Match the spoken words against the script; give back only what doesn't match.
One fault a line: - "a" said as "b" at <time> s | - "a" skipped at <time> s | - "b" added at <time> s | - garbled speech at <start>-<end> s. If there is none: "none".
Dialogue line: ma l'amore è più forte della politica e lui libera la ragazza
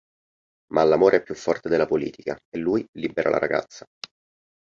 none